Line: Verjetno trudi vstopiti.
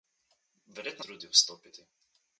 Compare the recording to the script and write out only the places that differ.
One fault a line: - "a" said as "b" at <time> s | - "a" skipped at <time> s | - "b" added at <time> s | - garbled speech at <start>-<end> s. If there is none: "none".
none